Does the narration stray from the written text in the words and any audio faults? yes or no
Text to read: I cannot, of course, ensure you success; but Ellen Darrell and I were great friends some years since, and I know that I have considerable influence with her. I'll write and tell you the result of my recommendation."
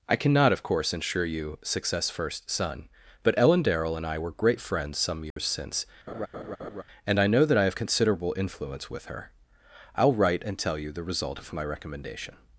yes